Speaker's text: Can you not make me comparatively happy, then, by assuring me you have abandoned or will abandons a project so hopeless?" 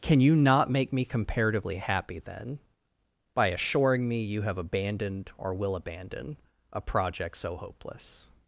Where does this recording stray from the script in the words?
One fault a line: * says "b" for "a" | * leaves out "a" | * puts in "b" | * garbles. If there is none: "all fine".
* says "abandon" for "abandons"